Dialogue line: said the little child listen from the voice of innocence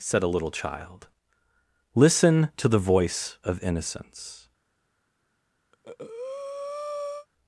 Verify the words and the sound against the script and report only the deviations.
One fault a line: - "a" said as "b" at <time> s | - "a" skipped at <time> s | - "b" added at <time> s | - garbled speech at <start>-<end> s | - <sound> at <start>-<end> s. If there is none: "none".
- "the" said as "a" at 0.2 s
- "from" said as "to" at 2.6 s
- breath at 5.7-7.3 s